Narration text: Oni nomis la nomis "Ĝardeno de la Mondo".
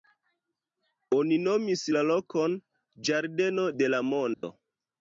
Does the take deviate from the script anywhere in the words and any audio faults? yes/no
yes